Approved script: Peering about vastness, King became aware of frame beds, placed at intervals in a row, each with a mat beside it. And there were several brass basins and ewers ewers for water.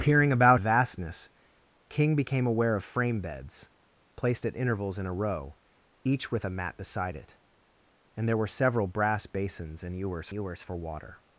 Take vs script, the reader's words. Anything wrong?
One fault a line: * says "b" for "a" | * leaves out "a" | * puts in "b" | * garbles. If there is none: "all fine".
all fine